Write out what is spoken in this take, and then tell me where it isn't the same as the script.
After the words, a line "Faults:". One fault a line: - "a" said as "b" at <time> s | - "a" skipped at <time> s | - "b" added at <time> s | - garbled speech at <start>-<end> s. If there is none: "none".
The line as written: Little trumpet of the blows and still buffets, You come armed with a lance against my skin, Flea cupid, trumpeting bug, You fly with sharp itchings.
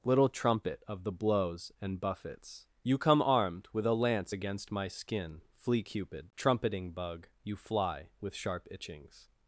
Little trumpet of the blows and buffets, You come armed with a lance against my skin, Flea cupid, trumpeting bug, You fly with sharp itchings.
Faults:
- "still" skipped at 2.0 s